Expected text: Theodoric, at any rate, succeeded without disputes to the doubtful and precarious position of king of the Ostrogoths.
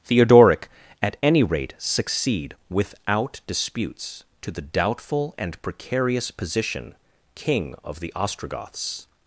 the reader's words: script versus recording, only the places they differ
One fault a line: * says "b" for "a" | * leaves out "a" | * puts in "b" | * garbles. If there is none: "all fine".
* says "succeed" for "succeeded"
* leaves out "of"